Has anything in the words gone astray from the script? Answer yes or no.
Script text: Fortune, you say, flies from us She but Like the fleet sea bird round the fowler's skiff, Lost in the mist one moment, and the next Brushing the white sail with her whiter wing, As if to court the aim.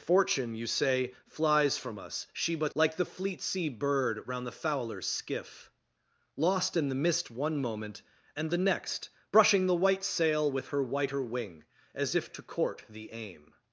no